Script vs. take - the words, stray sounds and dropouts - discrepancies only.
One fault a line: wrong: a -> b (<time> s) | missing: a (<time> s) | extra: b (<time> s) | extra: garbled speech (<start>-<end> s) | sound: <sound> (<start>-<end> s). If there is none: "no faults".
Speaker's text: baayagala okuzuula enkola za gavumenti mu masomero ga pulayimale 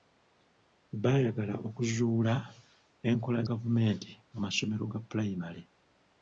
missing: za (3.4 s)